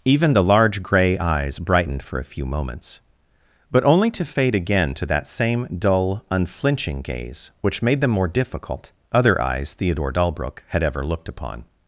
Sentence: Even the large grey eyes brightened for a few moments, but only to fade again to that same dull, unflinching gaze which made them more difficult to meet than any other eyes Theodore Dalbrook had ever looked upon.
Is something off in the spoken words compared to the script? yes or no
yes